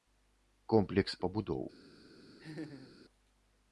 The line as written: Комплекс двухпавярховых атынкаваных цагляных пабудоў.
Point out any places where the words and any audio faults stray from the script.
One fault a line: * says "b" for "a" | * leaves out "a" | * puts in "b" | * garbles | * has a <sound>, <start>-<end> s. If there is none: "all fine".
* leaves out "двухпавярховых атынкаваных цагляных"
* has a laugh, 2.4-3.0 s